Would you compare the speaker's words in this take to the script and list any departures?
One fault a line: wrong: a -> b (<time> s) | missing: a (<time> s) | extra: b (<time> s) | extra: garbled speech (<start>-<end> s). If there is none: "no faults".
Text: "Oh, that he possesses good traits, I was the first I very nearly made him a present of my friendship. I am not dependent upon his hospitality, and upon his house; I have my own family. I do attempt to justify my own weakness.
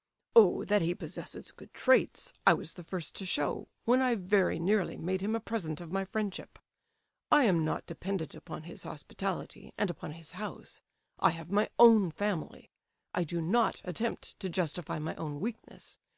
extra: to show when (3.2 s)
extra: not (13.4 s)